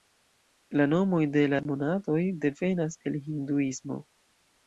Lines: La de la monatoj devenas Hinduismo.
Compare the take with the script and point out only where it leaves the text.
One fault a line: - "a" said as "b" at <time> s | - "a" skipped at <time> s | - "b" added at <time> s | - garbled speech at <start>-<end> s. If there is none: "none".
- "nomoj" added at 0.9 s
- "el" added at 3.1 s